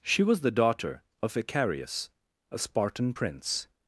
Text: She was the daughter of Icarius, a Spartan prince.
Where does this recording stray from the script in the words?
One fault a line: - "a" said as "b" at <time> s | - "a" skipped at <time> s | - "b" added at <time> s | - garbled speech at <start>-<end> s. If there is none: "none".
none